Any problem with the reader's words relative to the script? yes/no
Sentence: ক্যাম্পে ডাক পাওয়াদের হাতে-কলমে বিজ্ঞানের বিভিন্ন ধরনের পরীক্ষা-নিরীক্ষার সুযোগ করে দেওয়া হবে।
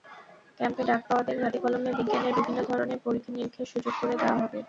no